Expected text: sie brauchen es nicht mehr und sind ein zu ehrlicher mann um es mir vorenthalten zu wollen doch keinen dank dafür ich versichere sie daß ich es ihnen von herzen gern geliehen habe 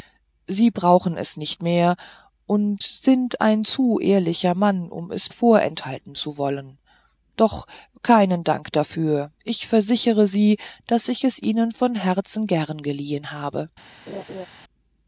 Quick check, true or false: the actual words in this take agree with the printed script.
false